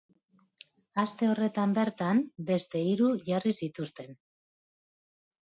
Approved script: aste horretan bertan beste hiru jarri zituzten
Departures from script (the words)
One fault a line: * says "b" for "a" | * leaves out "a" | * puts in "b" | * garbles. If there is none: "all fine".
all fine